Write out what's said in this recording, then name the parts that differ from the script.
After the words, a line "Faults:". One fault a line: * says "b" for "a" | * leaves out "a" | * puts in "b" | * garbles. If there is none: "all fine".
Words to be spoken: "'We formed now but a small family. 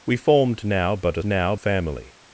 "'We formed now but a now family.
Faults:
* says "now" for "small"